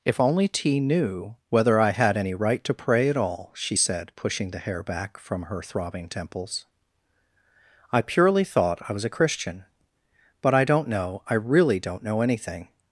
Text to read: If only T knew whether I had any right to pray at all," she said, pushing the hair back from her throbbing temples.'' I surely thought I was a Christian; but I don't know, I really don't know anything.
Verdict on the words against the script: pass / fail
fail